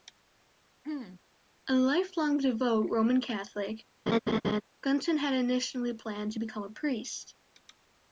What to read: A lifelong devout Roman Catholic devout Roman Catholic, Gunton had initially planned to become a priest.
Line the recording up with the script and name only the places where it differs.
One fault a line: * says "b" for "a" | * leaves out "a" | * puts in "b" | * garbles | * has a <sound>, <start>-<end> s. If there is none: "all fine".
* has a throat clearing, 0.8-1.2 s
* leaves out "devout Roman Catholic"
* has a laugh, 4.1-4.6 s